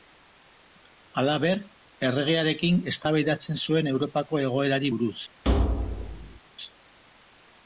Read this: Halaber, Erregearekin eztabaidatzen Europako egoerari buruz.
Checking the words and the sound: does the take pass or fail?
fail